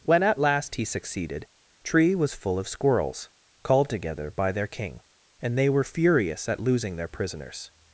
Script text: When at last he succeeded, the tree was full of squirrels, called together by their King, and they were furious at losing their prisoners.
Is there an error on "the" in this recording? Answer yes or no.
yes